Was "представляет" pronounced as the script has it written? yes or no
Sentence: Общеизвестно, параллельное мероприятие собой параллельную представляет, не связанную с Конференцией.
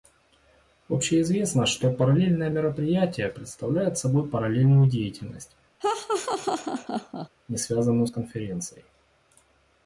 no